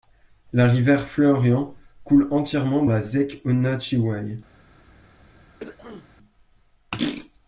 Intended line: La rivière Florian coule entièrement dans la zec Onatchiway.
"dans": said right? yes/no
no